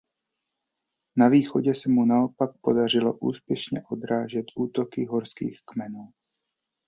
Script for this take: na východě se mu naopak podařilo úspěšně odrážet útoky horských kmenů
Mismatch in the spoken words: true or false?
false